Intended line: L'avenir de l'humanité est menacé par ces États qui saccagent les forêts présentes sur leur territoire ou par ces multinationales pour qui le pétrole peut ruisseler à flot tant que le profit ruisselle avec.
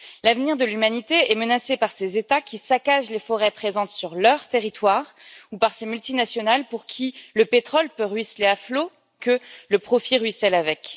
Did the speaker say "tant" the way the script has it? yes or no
no